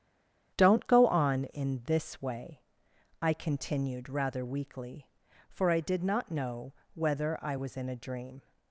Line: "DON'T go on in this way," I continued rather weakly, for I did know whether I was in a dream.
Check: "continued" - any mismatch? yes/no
no